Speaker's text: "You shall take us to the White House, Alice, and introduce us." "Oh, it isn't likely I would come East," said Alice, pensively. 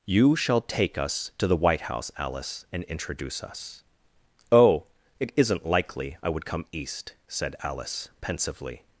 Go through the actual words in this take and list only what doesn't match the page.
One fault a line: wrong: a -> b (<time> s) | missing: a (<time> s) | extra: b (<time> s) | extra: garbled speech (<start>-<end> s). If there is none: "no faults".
no faults